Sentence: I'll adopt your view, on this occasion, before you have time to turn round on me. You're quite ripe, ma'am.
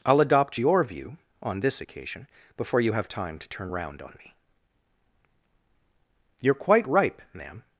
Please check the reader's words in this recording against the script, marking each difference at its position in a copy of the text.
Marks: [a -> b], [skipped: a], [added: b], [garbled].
I'll adopt your view, on this occasion, before you have time to turn round on me. You're quite ripe, ma'am.